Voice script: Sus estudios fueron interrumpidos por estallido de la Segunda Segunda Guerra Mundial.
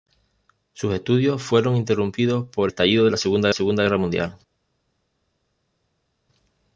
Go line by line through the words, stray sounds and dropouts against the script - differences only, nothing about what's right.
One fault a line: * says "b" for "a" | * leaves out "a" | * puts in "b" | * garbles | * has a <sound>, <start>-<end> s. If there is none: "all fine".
all fine